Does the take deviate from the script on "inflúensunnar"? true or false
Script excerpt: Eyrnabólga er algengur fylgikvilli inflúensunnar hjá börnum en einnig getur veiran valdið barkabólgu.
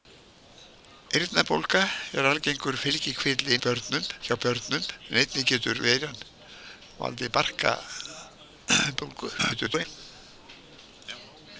true